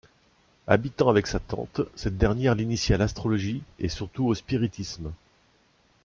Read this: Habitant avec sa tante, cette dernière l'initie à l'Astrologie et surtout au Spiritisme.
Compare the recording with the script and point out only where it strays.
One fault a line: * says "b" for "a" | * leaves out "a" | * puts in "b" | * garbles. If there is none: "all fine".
all fine